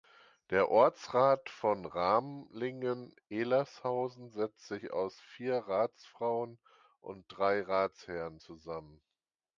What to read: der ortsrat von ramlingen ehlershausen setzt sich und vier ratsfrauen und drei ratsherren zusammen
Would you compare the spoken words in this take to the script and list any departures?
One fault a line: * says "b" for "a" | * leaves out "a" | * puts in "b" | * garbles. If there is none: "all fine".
* says "aus" for "und"